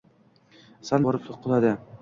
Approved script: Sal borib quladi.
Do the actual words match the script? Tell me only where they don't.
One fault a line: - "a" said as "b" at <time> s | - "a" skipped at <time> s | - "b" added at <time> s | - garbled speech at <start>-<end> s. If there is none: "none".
none